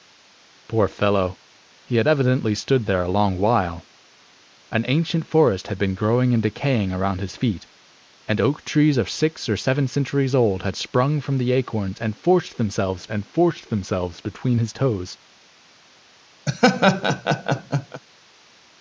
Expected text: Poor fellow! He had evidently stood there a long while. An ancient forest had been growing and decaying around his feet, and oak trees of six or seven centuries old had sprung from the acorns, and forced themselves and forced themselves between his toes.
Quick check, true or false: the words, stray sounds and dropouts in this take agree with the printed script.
false